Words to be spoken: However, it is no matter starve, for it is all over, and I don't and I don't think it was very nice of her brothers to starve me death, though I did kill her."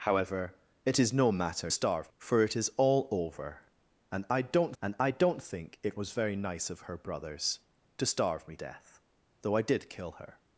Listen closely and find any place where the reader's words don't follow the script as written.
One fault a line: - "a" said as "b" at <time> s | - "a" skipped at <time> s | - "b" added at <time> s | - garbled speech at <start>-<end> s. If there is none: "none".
none